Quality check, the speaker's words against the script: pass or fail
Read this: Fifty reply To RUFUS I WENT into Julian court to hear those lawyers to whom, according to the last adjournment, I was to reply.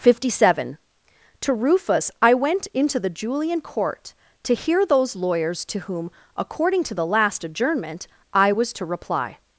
fail